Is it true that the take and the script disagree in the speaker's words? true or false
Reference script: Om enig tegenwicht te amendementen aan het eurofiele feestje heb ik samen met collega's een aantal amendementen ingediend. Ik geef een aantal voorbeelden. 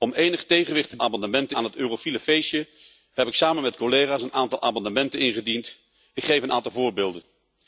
false